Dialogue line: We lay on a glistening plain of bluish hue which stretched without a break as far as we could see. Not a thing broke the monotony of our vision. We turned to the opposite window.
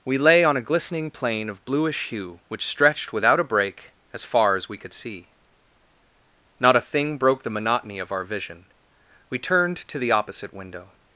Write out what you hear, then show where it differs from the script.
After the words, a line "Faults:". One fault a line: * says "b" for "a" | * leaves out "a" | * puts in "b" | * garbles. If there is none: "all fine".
We lay on a glistening plain of bluish hue which stretched without a break as far as we could see. Not a thing broke the monotony of our vision. We turned to the opposite window.
Faults:
all fine